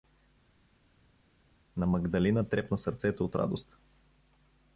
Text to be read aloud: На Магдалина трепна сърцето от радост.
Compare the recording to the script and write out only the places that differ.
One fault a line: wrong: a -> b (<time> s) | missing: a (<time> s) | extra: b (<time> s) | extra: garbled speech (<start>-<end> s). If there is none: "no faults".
no faults